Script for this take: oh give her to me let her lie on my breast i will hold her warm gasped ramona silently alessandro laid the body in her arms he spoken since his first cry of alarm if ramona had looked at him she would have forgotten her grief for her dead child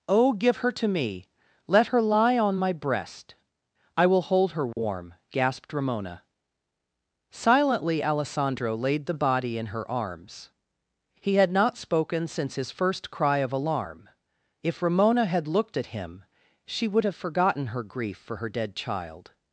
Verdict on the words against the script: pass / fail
fail